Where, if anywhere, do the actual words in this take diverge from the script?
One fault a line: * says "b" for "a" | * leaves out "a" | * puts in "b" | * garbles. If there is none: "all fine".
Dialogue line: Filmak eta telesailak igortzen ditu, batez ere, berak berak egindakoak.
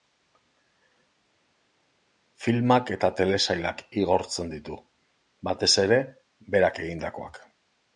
* leaves out "berak"